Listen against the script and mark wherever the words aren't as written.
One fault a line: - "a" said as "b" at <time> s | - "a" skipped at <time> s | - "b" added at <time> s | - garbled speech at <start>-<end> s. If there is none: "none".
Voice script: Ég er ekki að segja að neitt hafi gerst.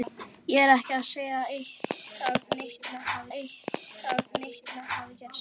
- "að neitt hafi" added at 3.3 s